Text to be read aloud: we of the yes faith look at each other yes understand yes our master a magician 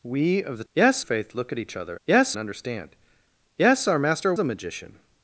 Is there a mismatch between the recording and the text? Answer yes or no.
no